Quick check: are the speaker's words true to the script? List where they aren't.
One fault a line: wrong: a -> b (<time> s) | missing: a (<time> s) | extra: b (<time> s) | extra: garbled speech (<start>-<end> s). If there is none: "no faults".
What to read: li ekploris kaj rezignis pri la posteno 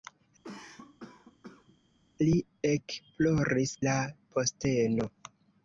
missing: kaj rezignis pri (3.7 s)